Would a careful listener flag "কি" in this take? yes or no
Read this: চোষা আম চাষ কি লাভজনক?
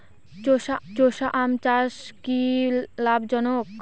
no